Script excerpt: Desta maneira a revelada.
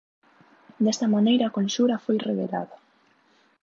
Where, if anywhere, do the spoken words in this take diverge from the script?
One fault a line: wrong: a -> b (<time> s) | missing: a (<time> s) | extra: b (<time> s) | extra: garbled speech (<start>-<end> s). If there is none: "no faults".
extra: conxura foi (1.6 s)